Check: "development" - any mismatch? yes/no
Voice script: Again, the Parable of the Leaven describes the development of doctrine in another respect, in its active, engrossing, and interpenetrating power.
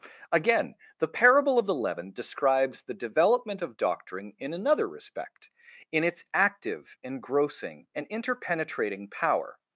no